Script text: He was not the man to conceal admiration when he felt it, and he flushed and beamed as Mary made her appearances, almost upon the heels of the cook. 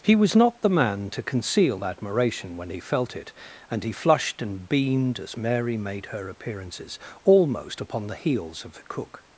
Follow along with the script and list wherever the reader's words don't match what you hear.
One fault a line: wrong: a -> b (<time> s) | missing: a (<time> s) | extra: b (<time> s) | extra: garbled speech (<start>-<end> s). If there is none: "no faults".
no faults